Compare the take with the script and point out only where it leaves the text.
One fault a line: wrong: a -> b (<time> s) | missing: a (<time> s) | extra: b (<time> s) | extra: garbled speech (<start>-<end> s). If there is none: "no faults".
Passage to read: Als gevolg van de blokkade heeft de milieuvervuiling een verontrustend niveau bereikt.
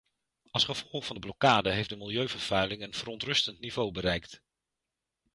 no faults